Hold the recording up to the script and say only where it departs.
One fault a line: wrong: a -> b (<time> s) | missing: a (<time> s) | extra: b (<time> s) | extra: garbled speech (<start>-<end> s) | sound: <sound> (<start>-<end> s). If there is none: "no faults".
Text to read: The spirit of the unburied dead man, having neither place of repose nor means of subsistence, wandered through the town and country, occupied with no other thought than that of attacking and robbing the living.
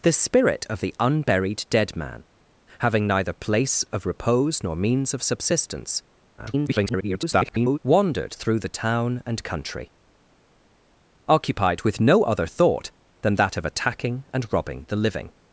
extra: garbled speech (6.4-7.8 s)